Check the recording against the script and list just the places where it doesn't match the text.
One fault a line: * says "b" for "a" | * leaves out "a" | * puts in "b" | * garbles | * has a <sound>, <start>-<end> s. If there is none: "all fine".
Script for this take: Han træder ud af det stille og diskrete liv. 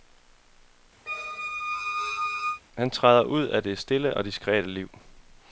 * has a squeak, 1.1-2.6 s